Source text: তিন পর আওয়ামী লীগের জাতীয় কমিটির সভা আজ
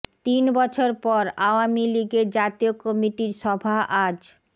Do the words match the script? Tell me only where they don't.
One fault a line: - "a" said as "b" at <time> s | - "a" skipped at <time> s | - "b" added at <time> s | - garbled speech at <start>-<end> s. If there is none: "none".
- "বছর" added at 0.6 s